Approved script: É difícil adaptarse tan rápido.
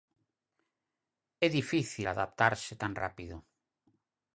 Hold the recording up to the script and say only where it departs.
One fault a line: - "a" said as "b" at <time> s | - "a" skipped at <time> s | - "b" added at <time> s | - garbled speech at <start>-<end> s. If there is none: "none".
none